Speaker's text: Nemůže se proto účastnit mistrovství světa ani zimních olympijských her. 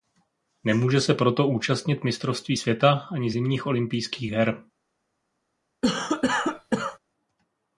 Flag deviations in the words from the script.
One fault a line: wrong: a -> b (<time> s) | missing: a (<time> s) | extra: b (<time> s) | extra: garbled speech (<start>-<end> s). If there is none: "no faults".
no faults